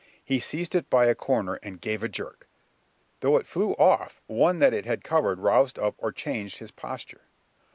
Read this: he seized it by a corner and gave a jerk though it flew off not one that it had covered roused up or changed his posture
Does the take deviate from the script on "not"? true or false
true